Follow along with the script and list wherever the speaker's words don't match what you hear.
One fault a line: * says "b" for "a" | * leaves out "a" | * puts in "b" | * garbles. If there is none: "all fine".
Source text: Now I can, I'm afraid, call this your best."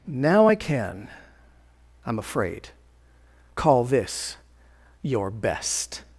all fine